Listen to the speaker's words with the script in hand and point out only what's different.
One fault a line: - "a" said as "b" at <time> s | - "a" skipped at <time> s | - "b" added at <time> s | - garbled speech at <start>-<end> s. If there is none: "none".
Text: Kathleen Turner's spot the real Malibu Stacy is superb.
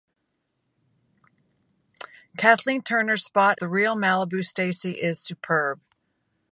none